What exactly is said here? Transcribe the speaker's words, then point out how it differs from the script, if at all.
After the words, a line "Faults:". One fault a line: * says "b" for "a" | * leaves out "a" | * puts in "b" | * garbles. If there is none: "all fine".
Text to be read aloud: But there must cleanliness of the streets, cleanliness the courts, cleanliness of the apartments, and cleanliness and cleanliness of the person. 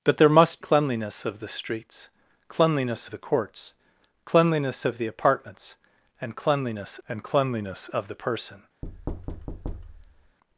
But there must cleanliness of the streets, cleanliness the courts, cleanliness of the apartments, and cleanliness and cleanliness of the person.
Faults:
all fine